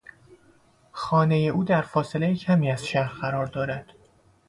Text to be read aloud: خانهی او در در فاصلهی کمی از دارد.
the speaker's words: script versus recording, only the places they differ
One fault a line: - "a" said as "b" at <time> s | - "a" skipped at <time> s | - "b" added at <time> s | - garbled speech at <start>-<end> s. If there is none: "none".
- "در" skipped at 1.8 s
- "شهر قرار" added at 2.9 s